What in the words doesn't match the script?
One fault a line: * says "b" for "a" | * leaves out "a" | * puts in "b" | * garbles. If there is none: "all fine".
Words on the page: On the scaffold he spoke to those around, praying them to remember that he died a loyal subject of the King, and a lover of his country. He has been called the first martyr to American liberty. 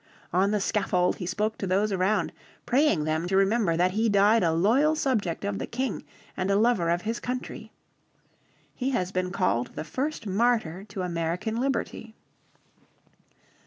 all fine